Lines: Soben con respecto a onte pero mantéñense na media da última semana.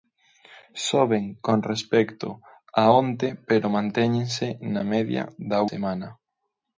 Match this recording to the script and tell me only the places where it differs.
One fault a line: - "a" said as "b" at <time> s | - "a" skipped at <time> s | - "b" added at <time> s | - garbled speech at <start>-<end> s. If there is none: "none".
- "última" skipped at 5.6 s